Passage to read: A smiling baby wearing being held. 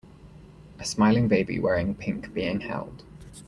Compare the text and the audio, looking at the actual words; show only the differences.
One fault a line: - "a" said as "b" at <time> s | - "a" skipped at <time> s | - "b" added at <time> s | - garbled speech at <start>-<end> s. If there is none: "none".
- "pink" added at 1.9 s